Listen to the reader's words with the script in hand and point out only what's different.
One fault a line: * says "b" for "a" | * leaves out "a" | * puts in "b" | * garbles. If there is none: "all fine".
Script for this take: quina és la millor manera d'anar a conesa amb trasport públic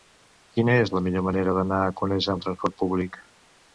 all fine